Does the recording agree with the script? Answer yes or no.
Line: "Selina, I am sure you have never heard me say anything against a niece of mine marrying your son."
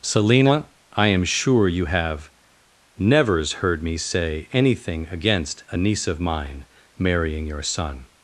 no